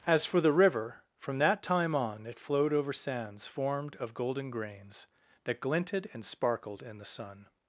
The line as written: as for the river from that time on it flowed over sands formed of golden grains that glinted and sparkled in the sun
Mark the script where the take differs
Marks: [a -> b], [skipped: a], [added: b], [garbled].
as for the river from that time on it flowed over sands formed of golden grains that glinted and sparkled in the sun